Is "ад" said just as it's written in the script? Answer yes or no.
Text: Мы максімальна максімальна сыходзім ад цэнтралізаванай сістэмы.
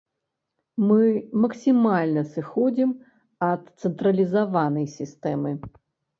yes